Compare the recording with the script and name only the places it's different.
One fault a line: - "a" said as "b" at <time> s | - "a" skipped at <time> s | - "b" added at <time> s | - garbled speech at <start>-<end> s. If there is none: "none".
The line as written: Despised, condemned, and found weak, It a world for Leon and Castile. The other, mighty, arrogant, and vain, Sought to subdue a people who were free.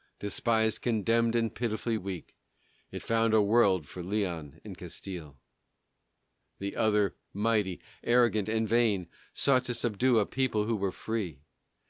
- "found" said as "pitifully" at 1.5 s
- "found" added at 3.0 s